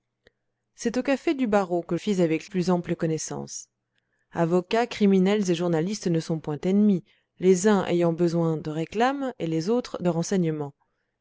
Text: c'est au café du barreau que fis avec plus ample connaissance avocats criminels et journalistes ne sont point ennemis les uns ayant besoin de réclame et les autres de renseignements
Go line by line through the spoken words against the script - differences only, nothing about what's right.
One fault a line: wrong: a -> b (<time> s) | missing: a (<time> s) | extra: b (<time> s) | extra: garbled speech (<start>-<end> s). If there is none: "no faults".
no faults